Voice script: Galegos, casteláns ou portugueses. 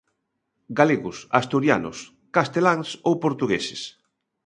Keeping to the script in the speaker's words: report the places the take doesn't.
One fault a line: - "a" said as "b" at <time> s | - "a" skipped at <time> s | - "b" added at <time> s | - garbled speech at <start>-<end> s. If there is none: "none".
- "asturianos" added at 1.4 s